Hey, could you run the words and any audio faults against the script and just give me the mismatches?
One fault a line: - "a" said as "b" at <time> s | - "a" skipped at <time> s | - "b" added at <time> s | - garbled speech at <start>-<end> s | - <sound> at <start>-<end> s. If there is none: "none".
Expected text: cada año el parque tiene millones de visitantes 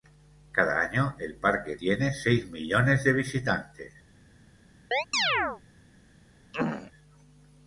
- "seis" added at 2.1 s
- chirp at 4.9-5.6 s
- throat clearing at 6.5-6.9 s